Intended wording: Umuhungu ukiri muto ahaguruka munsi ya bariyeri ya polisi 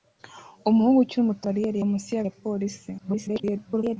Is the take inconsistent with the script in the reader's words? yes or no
yes